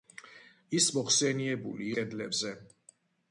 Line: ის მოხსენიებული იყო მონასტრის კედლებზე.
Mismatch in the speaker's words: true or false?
true